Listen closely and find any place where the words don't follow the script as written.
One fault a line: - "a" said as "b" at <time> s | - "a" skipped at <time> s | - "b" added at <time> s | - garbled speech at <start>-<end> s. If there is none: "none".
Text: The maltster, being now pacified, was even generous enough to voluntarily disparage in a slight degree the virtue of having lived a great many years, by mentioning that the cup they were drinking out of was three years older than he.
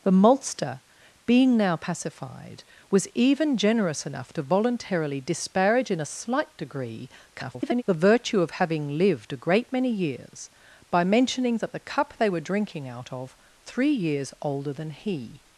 - garbled speech at 7.3-7.8 s
- "was" skipped at 13.4 s